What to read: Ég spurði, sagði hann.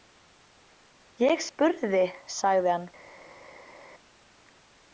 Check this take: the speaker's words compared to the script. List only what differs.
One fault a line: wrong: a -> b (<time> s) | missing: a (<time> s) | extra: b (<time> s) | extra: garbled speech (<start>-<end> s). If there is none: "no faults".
no faults